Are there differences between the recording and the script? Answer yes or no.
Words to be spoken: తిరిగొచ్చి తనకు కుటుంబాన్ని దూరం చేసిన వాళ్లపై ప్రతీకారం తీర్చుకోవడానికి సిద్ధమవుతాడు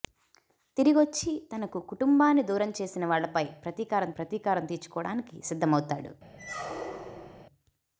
yes